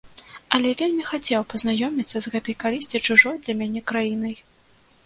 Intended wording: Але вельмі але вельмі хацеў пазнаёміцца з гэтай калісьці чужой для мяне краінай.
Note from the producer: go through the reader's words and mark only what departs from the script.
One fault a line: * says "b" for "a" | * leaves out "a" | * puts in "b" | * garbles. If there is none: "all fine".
* leaves out "але вельмі"